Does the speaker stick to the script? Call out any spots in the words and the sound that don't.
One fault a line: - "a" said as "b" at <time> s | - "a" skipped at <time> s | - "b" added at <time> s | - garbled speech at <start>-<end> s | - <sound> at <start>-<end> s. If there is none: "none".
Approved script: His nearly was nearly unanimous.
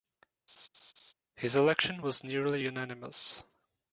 - laugh at 0.5-1.1 s
- "nearly" said as "election" at 1.6 s